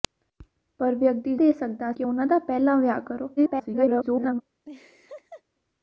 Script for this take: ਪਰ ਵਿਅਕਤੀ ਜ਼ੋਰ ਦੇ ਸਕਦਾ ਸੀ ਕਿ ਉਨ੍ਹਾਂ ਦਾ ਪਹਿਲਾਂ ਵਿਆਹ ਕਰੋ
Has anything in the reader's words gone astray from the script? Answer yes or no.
yes